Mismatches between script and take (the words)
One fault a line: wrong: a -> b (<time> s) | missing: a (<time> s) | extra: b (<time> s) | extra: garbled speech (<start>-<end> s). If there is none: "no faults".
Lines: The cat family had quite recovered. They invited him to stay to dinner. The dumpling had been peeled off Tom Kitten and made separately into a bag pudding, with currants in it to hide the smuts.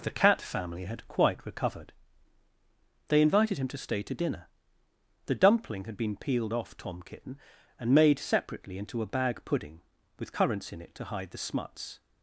no faults